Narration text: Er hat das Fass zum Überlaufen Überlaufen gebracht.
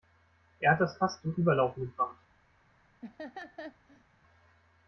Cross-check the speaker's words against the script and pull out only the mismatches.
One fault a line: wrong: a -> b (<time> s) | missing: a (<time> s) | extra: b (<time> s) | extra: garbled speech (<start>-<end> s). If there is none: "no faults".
missing: Überlaufen (1.8 s)